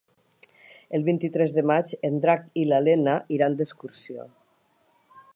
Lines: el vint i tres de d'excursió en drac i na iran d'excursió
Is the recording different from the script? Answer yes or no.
yes